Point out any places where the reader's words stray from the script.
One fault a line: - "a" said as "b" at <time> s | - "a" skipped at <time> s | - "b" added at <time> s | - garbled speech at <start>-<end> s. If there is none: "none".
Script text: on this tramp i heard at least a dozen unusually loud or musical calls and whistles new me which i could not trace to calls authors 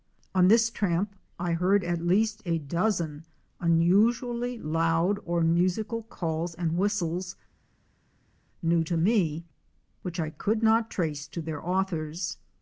- "to" added at 8.8 s
- "calls" said as "their" at 11.4 s